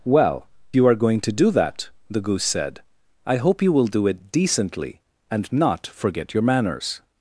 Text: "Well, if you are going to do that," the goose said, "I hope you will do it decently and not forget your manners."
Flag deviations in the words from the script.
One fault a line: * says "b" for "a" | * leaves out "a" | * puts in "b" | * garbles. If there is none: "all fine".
* leaves out "if"